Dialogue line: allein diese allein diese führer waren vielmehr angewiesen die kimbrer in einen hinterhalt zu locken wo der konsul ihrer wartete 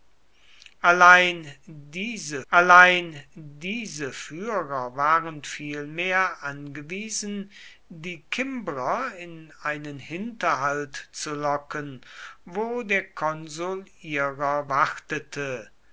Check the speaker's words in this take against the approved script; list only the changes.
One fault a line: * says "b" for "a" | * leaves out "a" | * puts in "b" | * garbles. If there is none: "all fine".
all fine